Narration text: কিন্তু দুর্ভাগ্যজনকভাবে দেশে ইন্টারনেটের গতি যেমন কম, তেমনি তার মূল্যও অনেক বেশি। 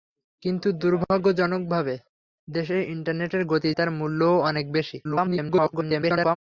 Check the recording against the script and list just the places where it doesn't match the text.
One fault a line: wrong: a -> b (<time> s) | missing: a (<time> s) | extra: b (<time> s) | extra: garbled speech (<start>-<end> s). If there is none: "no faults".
missing: যেমন কম তেমনি (3.7 s)
extra: garbled speech (5.0-6.4 s)